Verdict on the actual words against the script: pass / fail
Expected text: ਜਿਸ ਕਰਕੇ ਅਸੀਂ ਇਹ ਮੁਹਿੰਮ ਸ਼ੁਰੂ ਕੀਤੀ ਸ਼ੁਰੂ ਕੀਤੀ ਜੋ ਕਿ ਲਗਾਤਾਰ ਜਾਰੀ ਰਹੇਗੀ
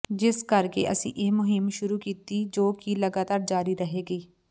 fail